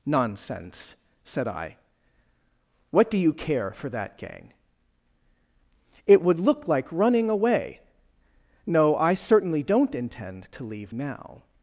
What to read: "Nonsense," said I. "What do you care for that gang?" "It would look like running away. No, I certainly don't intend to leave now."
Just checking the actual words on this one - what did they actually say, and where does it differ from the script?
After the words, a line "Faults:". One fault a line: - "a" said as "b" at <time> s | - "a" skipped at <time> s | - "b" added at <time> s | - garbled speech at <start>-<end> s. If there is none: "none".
"Nonsense," said I. "What do you care for that gang?" "It would look like running away. No, I certainly don't intend to leave now."
Faults:
none